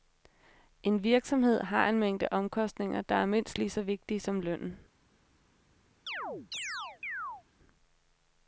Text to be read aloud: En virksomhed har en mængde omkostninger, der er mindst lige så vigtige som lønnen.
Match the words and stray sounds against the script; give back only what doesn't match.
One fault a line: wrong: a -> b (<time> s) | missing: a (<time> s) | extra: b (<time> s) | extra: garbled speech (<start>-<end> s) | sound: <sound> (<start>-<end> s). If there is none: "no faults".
sound: chirp (6.1-7.4 s)